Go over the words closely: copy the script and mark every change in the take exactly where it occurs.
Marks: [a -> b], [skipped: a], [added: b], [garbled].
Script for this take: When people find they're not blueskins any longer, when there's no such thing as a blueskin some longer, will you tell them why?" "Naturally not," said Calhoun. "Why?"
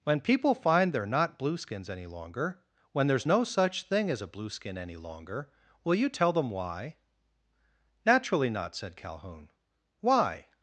When people find they're not blueskins any longer, when there's no such thing as a blueskin [some -> any] longer, will you tell them why?" "Naturally not," said Calhoun. "Why?"